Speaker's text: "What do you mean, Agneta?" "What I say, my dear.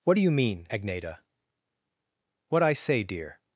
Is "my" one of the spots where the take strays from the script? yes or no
yes